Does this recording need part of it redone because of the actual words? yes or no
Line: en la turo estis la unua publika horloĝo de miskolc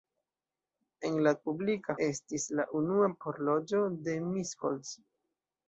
yes